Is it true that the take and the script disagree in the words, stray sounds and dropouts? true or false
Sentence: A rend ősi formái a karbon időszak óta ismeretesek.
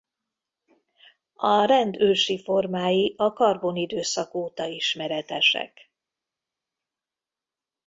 false